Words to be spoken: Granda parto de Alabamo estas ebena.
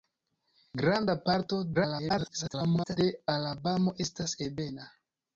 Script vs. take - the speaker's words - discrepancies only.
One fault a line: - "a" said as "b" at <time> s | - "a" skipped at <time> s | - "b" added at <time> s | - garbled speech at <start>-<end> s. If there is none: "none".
- garbled speech at 1.7-3.0 s